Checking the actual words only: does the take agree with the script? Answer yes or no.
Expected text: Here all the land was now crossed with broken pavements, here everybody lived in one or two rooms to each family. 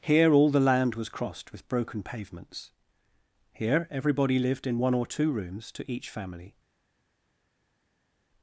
no